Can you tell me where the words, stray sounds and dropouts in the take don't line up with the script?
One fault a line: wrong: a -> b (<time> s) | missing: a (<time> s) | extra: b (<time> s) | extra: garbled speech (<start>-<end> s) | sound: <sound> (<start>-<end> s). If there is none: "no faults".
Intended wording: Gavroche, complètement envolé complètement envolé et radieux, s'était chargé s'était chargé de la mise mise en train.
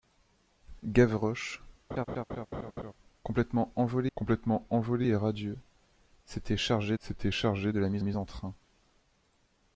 sound: laugh (1.9-2.9 s)